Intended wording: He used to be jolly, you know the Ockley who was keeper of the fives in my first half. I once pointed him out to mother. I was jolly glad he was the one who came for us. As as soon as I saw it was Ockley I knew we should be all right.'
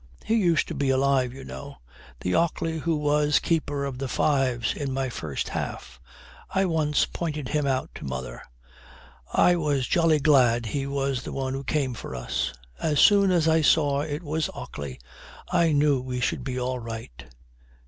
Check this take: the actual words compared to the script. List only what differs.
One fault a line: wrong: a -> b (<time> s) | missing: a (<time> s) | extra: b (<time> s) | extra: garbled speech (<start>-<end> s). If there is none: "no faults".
wrong: jolly -> alive (0.9 s)
missing: as (13.0 s)